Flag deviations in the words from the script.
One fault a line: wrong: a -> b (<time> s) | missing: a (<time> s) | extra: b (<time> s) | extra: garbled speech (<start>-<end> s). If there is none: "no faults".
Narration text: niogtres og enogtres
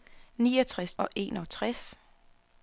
no faults